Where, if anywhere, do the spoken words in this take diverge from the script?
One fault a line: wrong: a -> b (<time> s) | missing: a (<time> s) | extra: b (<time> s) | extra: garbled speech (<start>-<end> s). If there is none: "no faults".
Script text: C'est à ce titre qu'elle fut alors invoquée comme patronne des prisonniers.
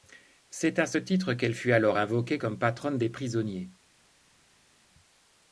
no faults